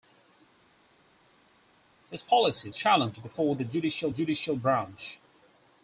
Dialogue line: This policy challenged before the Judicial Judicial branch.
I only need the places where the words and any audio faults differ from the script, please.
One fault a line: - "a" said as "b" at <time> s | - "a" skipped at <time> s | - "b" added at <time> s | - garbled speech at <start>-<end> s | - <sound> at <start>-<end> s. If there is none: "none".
none